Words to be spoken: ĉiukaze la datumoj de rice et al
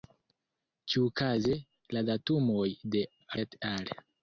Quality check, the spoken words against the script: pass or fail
fail